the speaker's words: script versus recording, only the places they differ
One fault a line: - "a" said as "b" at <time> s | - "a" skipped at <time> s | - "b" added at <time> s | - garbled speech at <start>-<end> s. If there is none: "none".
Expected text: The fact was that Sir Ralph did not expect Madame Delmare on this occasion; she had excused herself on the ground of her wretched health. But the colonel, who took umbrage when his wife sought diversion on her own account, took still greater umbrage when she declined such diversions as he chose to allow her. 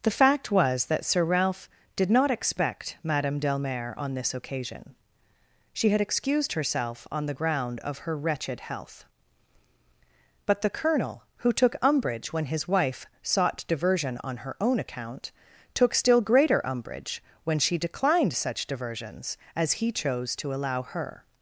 none